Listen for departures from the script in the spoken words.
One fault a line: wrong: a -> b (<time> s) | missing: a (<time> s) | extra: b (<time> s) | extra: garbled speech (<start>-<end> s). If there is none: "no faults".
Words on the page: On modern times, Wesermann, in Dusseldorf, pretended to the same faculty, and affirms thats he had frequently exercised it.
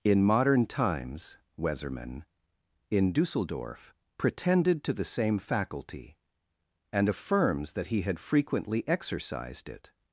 wrong: On -> In (0.0 s)
wrong: thats -> that (7.7 s)